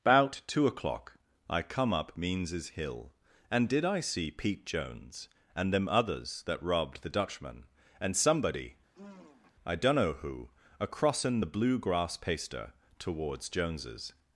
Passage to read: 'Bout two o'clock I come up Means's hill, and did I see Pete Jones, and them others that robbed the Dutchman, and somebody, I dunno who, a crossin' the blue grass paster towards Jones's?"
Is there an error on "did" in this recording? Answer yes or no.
no